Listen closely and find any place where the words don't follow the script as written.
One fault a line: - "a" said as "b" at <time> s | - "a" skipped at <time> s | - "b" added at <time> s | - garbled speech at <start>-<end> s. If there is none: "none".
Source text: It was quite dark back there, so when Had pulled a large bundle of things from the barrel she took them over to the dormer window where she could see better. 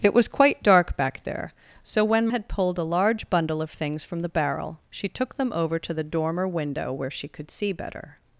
none